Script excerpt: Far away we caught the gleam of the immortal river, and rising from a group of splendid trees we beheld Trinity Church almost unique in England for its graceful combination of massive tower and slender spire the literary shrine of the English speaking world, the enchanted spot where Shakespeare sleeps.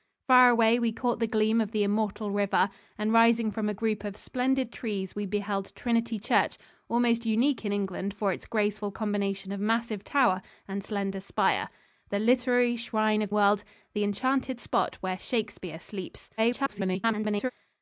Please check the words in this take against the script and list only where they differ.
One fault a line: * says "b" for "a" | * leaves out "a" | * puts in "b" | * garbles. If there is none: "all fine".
* leaves out "the English speaking"
* garbles